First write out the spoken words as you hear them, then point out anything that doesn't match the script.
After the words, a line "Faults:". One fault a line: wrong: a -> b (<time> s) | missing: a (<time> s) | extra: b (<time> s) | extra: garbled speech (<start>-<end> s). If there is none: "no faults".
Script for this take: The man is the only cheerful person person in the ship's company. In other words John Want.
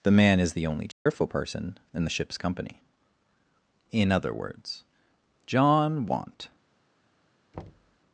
The man is the only cheerful person in the ship's company. In other words John Want.
Faults:
missing: person (1.8 s)